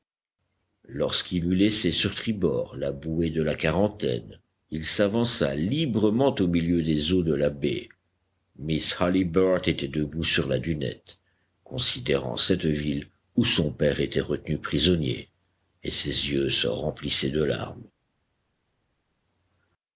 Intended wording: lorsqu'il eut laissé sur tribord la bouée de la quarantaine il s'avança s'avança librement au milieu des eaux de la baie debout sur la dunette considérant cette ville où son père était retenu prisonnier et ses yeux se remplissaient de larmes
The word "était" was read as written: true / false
true